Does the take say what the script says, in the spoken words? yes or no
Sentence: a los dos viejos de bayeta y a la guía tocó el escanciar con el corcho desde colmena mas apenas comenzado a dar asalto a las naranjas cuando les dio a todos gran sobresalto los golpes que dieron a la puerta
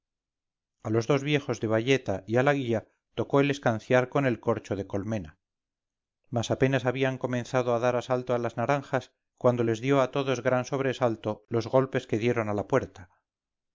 no